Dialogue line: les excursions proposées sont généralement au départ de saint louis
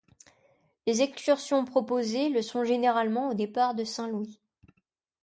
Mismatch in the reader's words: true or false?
true